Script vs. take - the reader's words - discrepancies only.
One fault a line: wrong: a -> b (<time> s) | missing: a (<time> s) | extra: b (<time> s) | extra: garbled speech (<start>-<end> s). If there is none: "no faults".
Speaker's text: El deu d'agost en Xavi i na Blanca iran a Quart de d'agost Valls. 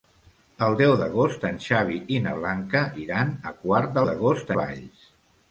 no faults